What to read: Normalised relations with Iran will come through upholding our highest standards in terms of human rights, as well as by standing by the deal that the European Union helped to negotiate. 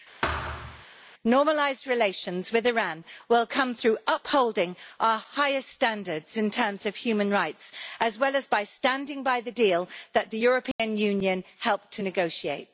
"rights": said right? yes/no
yes